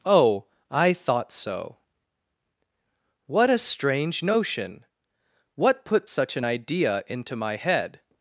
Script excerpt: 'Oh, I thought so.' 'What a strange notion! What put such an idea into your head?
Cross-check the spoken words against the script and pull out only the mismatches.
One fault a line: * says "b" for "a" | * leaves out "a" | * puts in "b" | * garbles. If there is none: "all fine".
* says "my" for "your"